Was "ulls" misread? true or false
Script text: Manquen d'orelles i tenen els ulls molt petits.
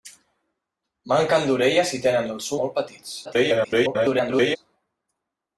true